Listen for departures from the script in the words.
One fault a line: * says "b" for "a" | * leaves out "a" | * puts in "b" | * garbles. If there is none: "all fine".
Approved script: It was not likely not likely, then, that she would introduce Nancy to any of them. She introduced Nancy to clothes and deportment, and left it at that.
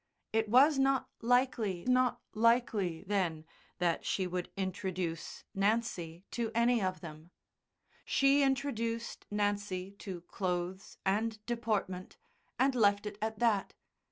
all fine